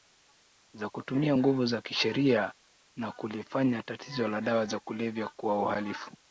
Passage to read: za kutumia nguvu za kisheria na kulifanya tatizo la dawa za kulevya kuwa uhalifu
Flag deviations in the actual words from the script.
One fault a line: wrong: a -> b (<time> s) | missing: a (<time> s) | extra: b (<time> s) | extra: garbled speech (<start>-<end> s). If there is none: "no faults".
no faults